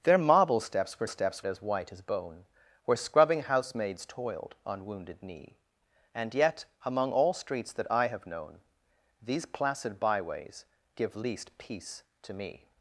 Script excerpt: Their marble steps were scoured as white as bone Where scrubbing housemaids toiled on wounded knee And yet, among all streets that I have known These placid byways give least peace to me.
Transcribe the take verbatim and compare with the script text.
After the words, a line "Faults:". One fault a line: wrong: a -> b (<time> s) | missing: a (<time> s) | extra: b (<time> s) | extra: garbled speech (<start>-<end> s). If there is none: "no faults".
Their marble steps were steps as white as bone Where scrubbing housemaids toiled on wounded knee And yet, among all streets that I have known These placid byways give least peace to me.
Faults:
wrong: scoured -> steps (1.0 s)